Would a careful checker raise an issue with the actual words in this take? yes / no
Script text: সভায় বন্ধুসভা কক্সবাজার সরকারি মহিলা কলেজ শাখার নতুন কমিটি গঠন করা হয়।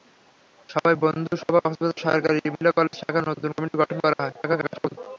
yes